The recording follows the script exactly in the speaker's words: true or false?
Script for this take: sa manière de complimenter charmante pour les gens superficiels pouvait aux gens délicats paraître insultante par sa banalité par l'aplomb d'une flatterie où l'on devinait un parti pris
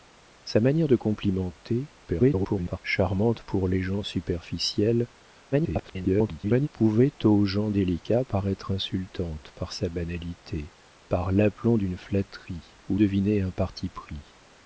false